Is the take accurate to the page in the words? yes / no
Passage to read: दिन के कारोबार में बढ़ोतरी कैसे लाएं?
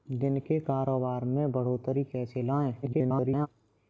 no